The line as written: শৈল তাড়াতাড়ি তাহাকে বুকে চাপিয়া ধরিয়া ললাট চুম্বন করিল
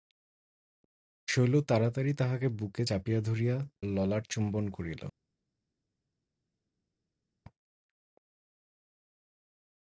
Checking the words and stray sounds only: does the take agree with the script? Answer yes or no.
yes